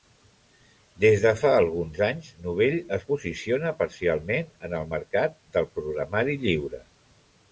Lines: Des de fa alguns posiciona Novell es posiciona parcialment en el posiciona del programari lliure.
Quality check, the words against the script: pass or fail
fail